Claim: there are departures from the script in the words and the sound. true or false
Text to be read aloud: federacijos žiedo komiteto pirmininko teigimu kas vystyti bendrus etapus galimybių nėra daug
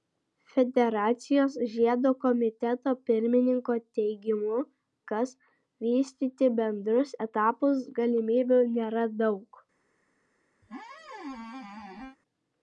true